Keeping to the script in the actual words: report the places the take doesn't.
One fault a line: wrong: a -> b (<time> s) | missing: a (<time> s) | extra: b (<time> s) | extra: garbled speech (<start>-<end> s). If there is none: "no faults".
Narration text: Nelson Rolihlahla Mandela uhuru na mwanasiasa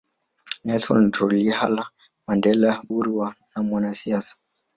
no faults